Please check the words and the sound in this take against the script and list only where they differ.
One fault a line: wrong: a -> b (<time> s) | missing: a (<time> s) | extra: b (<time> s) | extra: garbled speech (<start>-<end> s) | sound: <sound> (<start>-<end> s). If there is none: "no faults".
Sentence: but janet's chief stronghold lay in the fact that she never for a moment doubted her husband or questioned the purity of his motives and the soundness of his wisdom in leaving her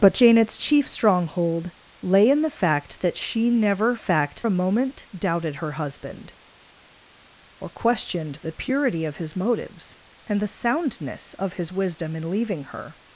wrong: for -> fact (4.0 s)